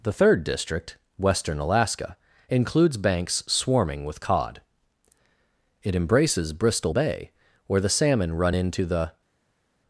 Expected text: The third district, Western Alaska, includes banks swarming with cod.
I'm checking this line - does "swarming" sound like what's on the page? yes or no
yes